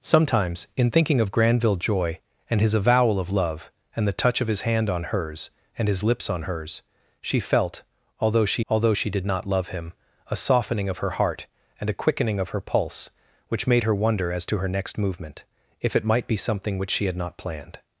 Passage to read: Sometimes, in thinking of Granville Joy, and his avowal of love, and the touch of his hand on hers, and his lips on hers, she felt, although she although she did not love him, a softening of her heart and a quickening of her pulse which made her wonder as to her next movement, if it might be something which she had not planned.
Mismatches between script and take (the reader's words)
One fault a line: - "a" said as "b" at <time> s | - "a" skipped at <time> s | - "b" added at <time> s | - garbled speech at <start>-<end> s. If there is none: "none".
none